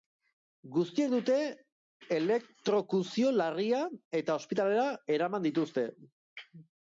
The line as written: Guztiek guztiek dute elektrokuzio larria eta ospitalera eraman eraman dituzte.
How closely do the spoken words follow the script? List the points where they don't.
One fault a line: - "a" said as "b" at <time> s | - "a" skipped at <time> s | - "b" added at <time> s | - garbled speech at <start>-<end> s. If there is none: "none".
- "guztiek" skipped at 1.1 s
- "eraman" skipped at 5.5 s